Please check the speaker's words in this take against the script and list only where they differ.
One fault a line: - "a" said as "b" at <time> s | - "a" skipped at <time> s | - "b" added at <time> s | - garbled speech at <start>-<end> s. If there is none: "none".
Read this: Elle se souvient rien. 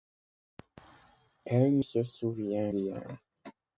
none